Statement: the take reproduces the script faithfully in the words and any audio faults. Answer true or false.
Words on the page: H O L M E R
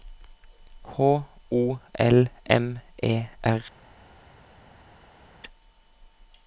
true